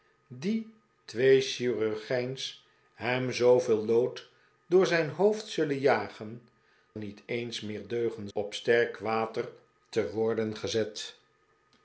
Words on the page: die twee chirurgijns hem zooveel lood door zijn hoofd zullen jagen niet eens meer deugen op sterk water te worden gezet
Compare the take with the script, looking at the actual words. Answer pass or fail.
pass